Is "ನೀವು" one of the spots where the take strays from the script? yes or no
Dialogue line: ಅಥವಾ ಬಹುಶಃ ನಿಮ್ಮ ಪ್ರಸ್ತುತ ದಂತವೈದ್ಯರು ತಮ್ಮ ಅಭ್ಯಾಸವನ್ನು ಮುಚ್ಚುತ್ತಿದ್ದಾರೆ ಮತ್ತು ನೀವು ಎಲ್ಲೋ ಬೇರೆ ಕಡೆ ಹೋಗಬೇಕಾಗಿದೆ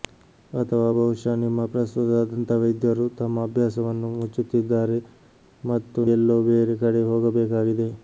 yes